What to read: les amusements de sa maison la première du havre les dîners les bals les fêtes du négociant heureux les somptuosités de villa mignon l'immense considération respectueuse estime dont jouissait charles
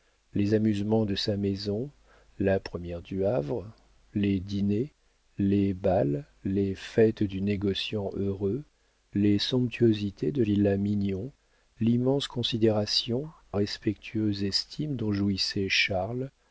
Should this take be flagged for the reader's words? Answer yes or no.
no